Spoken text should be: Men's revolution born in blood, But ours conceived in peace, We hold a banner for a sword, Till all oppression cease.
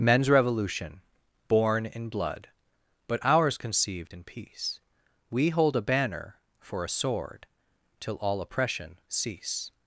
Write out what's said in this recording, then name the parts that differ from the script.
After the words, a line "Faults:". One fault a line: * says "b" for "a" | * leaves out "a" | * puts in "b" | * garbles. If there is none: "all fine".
Men's revolution born in blood, But ours conceived in peace, We hold a banner for a sword, Till all oppression cease.
Faults:
all fine